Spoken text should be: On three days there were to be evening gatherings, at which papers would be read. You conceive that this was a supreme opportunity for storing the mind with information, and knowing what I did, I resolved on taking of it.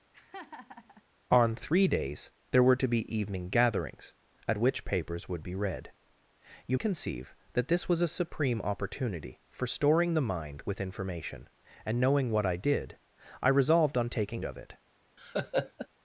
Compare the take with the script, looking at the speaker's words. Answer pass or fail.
pass